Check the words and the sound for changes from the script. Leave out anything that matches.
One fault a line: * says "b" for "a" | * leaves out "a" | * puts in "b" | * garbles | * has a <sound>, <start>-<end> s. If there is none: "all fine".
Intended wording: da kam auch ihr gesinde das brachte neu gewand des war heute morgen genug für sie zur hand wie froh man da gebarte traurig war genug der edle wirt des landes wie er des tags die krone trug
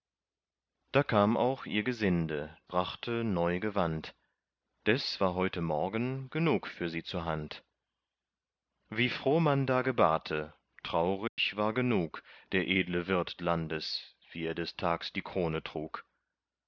* leaves out "das"
* has a dropout, 11.3-11.4 s
* leaves out "des"